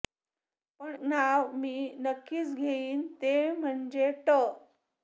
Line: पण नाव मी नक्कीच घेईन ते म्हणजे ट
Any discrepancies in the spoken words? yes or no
no